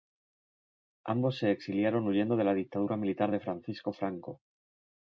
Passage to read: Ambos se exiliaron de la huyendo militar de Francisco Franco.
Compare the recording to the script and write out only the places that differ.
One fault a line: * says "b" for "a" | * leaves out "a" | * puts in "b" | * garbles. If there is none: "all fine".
* puts in "huyendo"
* says "dictadura" for "huyendo"